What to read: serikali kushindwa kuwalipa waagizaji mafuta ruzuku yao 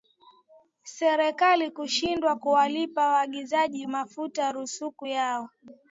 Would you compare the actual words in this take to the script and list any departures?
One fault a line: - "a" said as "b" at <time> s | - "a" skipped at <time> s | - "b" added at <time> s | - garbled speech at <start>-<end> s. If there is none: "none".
none